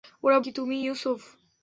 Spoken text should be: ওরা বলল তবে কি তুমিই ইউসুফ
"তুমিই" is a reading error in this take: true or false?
false